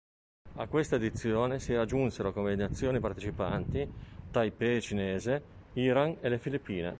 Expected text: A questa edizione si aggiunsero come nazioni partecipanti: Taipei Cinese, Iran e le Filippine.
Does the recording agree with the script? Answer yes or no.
yes